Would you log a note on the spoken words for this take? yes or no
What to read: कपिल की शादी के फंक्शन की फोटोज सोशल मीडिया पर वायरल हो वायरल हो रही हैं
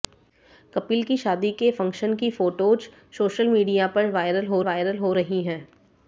no